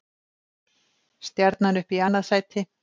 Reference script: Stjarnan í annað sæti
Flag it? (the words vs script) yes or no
yes